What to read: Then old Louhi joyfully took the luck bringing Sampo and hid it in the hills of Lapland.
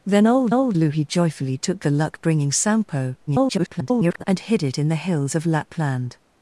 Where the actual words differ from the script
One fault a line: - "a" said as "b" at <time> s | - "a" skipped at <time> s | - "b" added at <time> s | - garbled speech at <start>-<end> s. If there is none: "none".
- "old" added at 0.5 s
- garbled speech at 3.3-4.2 s